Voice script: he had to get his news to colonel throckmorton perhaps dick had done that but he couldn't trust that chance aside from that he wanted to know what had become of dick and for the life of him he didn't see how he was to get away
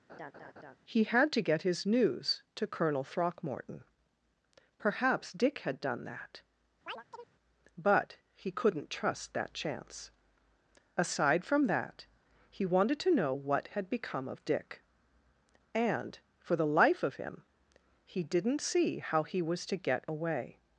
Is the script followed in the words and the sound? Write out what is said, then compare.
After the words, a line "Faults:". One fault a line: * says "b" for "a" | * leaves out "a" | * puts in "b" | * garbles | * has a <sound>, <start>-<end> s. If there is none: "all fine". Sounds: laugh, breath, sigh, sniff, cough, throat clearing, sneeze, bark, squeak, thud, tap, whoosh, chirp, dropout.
he had to get his news to colonel throckmorton perhaps dick had done that but he couldn't trust that chance aside from that he wanted to know what had become of dick and for the life of him he didn't see how he was to get away
Faults:
* has a laugh, 0.1-0.8 s
* has a chirp, 6.9-7.3 s